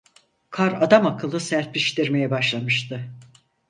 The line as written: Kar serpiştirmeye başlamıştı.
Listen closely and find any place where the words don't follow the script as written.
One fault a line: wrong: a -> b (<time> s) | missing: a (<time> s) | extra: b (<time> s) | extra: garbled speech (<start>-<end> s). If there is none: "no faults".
extra: adamakıllı (0.8 s)